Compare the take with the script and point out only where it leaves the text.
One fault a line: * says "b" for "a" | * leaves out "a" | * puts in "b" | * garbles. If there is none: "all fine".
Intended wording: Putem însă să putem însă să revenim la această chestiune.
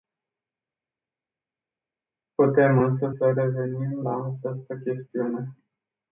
* leaves out "putem însă să"